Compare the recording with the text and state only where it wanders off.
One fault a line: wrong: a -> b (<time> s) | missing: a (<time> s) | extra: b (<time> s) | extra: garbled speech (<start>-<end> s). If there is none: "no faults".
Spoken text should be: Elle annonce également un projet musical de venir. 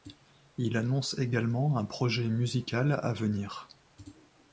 wrong: Elle -> Il (0.6 s)
wrong: de -> à (3.0 s)